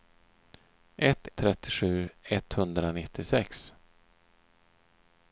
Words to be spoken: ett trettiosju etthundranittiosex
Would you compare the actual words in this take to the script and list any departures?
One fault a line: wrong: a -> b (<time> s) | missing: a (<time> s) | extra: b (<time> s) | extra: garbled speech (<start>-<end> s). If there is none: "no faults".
no faults